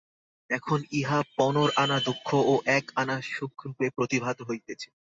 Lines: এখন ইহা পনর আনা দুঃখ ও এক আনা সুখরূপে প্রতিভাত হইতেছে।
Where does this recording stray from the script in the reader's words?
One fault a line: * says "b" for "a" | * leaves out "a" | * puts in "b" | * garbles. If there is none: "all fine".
all fine